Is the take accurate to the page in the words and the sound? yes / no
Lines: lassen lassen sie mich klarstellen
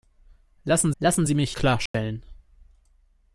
no